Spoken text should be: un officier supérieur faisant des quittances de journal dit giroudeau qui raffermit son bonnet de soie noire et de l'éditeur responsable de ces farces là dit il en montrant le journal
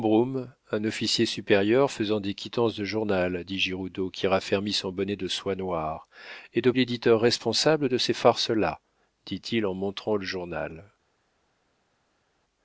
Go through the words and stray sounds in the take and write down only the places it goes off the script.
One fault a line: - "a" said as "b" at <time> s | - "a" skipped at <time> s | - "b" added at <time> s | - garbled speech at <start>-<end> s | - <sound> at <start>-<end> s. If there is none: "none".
none